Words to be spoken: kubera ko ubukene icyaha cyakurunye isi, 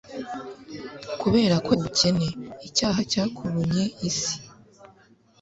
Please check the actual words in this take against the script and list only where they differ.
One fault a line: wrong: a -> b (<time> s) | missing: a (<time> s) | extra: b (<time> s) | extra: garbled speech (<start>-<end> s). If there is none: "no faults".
no faults